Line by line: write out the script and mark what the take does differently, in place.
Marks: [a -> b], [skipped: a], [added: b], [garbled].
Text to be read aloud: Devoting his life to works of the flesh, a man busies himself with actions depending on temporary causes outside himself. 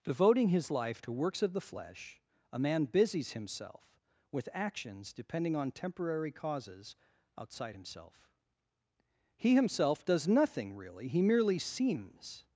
Devoting his life to works of the flesh, a man busies himself with actions depending on temporary causes outside himself. [added: He himself does nothing really he merely seems]